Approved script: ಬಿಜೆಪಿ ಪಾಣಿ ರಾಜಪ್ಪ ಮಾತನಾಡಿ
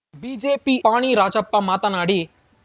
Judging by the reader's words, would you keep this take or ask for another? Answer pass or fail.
pass